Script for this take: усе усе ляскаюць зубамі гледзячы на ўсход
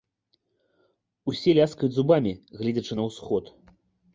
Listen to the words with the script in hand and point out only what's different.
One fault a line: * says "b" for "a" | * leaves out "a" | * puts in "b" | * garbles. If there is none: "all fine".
* leaves out "усе"